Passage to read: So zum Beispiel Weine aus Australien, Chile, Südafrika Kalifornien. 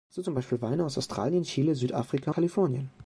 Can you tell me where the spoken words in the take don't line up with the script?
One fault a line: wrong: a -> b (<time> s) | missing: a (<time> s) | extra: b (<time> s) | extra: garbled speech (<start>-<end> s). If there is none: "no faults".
no faults